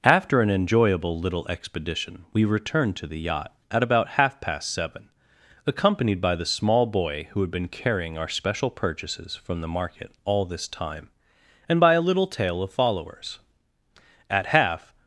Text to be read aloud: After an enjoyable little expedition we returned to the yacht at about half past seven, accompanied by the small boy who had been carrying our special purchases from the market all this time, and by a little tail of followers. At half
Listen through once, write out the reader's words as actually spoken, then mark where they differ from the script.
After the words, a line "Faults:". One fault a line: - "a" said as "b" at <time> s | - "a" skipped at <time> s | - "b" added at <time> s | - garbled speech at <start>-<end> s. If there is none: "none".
After an enjoyable little expedition we returned to the yacht at about half past seven, accompanied by the small boy who had been carrying our special purchases from the market all this time, and by a little tail of followers. At half
Faults:
none